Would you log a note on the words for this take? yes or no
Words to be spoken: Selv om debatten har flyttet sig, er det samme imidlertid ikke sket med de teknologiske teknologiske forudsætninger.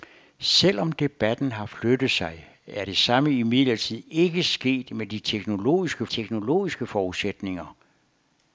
no